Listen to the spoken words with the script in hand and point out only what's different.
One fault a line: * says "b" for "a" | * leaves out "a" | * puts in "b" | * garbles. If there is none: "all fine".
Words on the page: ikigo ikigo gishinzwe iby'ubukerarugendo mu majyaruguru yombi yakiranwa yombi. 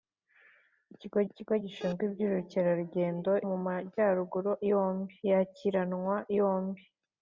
all fine